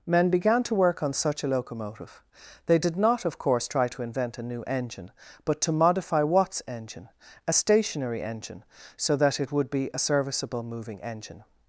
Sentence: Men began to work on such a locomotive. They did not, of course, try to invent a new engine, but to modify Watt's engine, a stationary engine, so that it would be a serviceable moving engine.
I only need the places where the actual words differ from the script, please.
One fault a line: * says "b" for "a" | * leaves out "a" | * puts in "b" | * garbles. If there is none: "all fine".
all fine